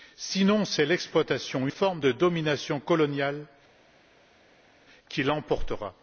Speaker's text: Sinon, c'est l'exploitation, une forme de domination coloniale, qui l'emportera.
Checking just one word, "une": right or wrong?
wrong